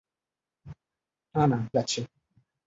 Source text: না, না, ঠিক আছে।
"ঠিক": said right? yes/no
no